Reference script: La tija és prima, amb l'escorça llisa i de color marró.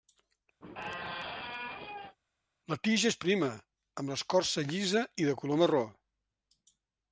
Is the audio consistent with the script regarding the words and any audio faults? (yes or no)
no